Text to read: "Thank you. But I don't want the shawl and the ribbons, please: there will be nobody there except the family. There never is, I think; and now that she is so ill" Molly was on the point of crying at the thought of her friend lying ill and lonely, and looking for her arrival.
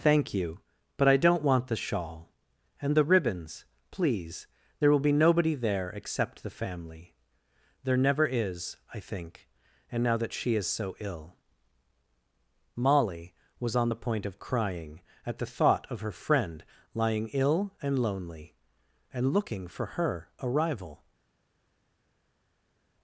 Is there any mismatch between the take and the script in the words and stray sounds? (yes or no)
no